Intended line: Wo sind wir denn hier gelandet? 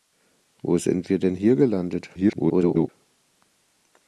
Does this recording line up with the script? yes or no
no